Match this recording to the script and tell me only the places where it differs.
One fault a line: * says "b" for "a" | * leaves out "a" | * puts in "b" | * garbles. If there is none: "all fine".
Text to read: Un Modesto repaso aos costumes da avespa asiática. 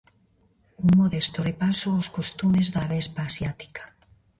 all fine